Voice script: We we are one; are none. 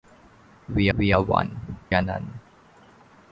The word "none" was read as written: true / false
true